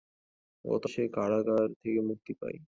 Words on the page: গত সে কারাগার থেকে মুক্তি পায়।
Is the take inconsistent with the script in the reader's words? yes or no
no